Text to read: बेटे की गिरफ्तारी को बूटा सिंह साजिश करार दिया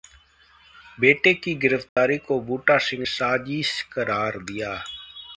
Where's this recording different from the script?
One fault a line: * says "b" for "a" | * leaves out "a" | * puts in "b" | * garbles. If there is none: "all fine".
all fine